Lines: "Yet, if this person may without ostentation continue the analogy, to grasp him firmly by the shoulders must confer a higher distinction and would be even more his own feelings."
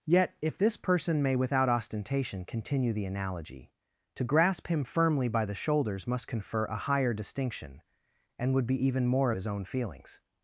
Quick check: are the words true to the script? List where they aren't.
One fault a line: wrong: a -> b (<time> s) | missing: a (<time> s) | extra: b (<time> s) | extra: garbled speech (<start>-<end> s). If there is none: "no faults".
no faults